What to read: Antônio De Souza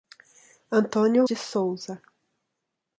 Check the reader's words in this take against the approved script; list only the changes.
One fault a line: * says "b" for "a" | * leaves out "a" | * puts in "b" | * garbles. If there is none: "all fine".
all fine